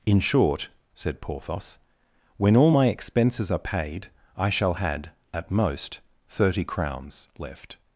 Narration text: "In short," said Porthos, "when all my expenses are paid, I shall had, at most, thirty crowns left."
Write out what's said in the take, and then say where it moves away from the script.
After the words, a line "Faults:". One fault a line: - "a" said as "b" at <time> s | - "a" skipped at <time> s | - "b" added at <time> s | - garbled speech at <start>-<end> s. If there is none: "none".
"In short," said Porthos, "when all my expenses are paid, I shall had, at most, thirty crowns left."
Faults:
none